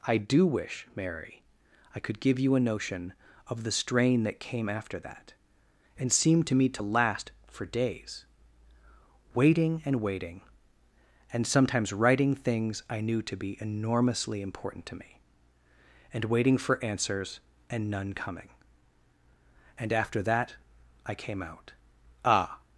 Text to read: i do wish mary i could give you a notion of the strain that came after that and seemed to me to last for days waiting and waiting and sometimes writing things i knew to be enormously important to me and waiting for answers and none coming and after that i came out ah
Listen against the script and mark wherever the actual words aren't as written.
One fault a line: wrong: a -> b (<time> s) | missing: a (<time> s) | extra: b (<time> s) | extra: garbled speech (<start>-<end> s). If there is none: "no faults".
no faults